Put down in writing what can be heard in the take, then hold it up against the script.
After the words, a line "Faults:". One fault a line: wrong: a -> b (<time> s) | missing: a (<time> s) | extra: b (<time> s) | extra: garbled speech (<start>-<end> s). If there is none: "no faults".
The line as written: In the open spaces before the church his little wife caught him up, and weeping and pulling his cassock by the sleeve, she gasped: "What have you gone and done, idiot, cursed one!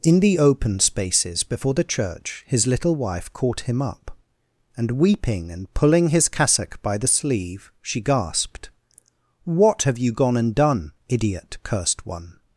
In the open spaces before the church his little wife caught him up, and weeping and pulling his cassock by the sleeve, she gasped: "What have you gone and done, idiot, cursed one!
Faults:
no faults